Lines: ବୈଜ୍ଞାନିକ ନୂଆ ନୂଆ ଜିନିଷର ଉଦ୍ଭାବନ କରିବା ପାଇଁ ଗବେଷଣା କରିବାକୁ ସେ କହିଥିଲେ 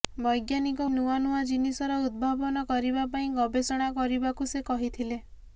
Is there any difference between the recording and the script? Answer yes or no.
no